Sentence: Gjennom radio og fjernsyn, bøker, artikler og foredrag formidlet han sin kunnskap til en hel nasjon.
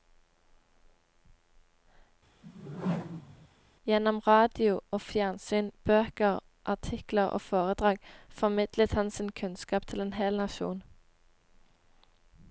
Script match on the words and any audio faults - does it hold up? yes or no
no